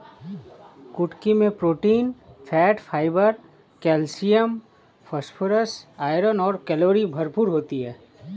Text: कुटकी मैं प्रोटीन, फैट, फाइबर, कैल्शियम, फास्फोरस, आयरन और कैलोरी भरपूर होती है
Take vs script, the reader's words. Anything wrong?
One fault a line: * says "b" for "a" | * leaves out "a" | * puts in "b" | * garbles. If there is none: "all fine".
all fine